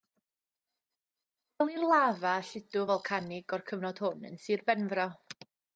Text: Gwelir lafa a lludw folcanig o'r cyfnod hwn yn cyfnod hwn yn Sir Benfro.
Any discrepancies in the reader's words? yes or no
yes